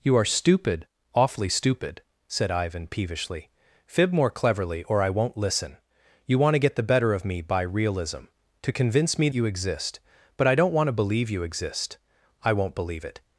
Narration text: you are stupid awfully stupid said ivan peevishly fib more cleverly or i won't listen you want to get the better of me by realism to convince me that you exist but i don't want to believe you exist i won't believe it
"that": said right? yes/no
no